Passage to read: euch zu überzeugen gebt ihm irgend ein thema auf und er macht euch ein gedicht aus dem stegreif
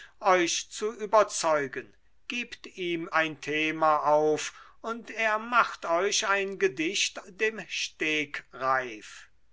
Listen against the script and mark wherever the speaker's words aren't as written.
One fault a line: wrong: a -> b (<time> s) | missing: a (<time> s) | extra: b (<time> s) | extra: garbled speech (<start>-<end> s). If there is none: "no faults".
missing: irgend (3.1 s)
missing: aus (7.3 s)